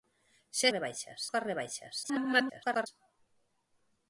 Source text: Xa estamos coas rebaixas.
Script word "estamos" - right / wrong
wrong